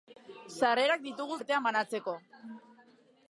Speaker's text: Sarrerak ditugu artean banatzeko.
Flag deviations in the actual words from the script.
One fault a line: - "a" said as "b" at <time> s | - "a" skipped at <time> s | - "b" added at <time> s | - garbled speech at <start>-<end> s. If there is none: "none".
none